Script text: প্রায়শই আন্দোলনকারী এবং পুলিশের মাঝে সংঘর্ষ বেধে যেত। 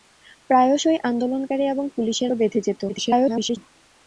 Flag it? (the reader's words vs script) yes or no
yes